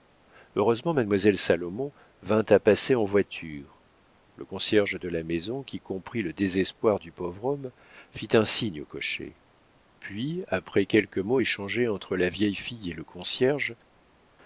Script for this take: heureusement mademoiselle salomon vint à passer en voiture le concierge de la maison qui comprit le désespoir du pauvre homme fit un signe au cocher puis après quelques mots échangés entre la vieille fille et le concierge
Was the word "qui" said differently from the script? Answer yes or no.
no